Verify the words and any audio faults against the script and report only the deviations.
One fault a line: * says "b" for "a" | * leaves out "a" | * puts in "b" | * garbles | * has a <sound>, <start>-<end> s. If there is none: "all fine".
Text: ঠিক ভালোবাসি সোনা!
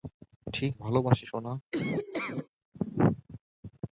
* has a laugh, 1.7-2.5 s